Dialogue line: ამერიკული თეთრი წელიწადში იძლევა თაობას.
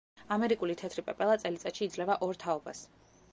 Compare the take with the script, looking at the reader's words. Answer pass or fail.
fail